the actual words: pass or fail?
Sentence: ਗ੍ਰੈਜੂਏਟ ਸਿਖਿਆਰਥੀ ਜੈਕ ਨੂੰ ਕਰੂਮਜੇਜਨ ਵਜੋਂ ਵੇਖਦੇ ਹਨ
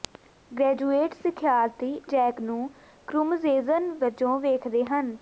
pass